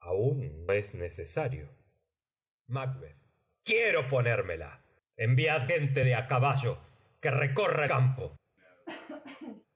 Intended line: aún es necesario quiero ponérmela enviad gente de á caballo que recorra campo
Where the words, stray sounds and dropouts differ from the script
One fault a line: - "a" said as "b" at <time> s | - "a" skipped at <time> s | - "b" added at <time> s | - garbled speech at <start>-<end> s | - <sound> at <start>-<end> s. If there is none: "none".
- cough at 8.6-9.7 s